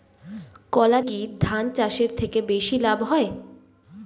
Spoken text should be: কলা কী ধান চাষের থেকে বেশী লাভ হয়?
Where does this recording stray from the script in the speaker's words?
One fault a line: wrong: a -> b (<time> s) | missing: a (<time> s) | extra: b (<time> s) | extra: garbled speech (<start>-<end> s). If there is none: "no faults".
no faults